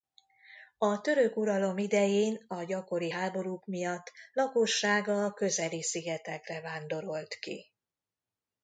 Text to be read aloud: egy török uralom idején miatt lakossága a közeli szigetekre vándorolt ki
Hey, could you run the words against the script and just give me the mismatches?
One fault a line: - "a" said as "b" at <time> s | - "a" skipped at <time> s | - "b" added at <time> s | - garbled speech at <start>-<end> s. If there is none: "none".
- "egy" said as "a" at 0.8 s
- "a gyakori háborúk" added at 2.5 s